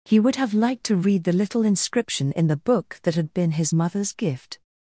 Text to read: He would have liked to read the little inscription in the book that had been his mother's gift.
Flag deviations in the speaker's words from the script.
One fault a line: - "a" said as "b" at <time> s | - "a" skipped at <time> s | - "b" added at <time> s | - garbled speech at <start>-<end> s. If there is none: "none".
none